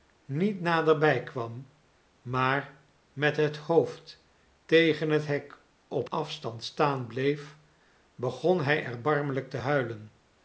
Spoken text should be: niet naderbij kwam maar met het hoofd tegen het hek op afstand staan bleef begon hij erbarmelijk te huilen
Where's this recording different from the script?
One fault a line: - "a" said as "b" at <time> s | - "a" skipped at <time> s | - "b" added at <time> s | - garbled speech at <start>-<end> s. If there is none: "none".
none